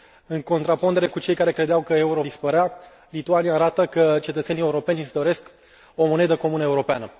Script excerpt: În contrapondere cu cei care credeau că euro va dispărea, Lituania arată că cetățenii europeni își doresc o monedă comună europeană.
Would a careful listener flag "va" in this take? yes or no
yes